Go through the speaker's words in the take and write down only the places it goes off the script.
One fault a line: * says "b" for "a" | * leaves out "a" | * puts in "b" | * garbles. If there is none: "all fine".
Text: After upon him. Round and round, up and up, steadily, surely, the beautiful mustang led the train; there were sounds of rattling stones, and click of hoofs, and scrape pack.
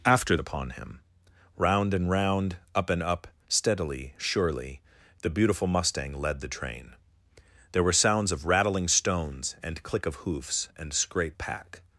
all fine